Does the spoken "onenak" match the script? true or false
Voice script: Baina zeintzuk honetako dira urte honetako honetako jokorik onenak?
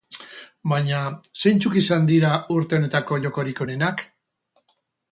true